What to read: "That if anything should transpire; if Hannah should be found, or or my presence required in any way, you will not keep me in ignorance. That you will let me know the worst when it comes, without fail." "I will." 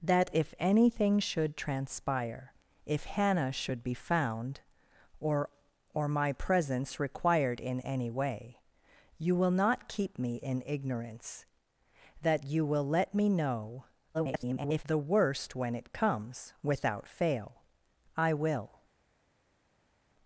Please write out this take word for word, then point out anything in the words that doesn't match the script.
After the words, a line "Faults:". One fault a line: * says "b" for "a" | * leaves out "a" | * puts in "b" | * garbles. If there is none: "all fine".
"That if anything should transpire; if Hannah should be found, or or my presence required in any way, you will not keep me in ignorance. That you will let me know [garbled] the worst when it comes, without fail." "I will."
Faults:
* garbles